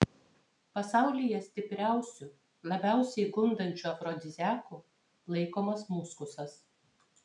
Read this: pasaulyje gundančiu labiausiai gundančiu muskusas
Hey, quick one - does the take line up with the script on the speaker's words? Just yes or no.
no